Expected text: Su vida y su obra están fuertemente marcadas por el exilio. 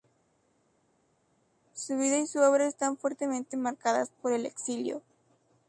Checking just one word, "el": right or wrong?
right